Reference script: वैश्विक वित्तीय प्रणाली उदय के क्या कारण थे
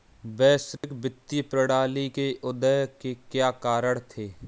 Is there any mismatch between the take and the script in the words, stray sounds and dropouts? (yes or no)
yes